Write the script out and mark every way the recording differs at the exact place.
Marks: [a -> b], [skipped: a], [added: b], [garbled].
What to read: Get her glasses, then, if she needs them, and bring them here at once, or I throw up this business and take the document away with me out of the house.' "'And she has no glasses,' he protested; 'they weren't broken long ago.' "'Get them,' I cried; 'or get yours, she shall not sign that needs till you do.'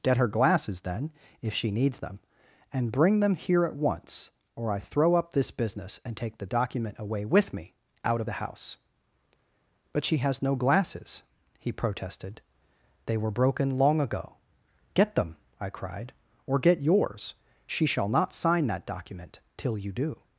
Get her glasses, then, if she needs them, and bring them here at once, or I throw up this business and take the document away with me out of the house.' ["'And -> But] she has no glasses,' he protested; 'they [weren't -> were] broken long ago.' "'Get them,' I cried; 'or get yours, she shall not sign that [needs -> document] till you do.'